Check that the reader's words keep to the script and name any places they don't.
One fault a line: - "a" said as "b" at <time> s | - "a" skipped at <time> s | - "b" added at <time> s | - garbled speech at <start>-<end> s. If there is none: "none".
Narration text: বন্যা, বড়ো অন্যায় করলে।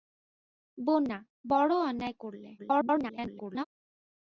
- garbled speech at 2.6-3.6 s